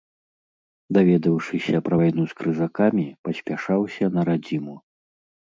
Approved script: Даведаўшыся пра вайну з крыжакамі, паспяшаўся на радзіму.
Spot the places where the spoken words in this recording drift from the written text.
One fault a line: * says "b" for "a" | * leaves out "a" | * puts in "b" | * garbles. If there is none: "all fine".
all fine